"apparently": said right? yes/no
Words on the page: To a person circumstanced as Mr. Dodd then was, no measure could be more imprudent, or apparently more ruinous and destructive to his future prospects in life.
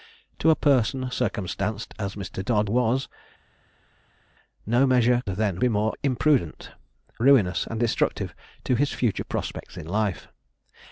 no